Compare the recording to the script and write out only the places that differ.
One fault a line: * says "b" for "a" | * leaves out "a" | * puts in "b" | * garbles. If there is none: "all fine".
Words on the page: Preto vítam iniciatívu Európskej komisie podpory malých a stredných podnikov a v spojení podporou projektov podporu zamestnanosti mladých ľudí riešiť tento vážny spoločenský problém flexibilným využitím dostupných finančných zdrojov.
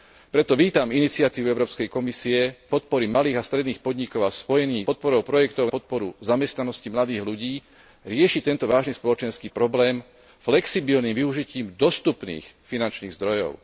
all fine